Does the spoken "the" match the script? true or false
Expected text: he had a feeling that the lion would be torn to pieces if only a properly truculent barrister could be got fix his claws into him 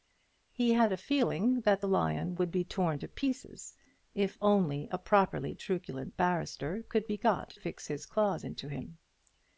true